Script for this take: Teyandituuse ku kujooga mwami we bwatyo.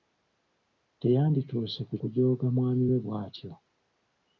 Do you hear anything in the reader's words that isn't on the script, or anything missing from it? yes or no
no